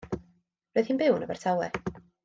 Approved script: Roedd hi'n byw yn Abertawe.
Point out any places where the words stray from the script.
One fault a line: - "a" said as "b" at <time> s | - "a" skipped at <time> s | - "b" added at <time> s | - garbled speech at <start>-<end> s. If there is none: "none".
none